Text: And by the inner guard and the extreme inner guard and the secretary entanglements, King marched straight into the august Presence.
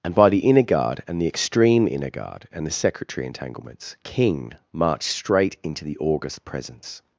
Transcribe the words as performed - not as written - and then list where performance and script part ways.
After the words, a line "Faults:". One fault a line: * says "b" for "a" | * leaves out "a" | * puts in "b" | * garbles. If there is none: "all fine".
And by the inner guard and the extreme inner guard and the secretary entanglements, King marched straight into the august Presence.
Faults:
all fine